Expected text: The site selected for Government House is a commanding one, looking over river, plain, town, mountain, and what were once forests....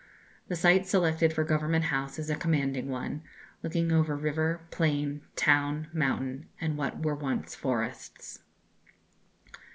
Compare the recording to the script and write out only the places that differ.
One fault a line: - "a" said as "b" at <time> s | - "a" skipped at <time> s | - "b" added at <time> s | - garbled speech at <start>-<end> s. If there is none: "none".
none